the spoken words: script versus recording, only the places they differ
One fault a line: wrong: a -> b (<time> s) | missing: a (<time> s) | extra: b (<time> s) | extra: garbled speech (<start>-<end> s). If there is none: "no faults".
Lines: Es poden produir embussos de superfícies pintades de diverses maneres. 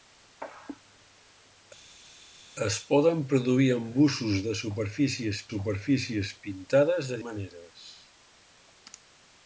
extra: superfícies (5.5 s)
missing: diverses (7.2 s)